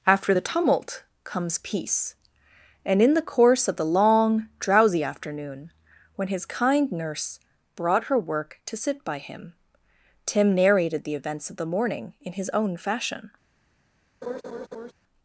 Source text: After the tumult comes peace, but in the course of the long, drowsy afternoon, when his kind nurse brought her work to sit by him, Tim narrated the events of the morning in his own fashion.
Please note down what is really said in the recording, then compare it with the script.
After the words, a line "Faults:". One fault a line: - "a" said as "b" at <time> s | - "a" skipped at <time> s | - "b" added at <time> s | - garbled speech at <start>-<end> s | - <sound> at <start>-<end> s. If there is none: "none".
After the tumult comes peace, and in the course of the long, drowsy afternoon, when his kind nurse brought her work to sit by him, Tim narrated the events of the morning in his own fashion.
Faults:
- "but" said as "and" at 2.8 s
- laugh at 14.2-14.9 s